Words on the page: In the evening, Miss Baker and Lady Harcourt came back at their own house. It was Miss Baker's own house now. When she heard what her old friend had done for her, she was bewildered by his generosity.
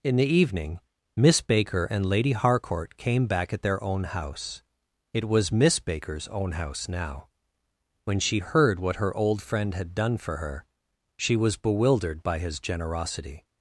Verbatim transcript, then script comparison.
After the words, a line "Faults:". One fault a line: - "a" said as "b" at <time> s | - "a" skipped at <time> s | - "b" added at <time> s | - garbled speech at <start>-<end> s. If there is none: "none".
In the evening, Miss Baker and Lady Harcourt came back at their own house. It was Miss Baker's own house now. When she heard what her old friend had done for her, she was bewildered by his generosity.
Faults:
none